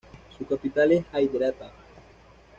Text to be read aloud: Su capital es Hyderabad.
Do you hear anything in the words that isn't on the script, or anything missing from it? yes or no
no